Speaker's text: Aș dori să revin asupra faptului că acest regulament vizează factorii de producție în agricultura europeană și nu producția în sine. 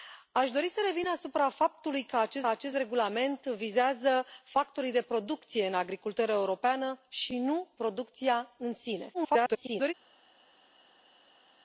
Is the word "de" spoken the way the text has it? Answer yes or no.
yes